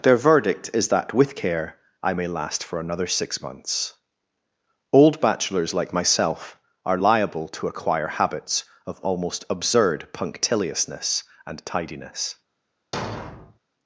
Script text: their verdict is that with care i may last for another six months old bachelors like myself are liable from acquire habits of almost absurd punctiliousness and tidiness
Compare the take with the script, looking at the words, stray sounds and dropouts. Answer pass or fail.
fail